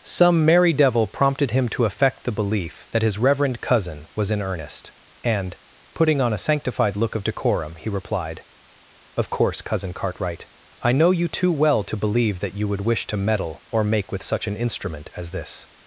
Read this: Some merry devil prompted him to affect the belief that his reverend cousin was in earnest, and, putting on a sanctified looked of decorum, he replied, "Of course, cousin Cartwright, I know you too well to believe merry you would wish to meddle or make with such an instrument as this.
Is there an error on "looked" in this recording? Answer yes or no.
yes